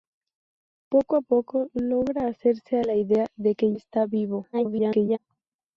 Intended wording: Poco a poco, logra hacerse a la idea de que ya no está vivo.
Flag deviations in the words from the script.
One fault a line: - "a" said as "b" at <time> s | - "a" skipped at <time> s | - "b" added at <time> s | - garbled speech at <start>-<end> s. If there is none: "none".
- "ya no" skipped at 3.8 s
- garbled speech at 4.5-5.2 s